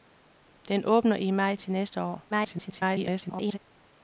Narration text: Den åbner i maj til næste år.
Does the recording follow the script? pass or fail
fail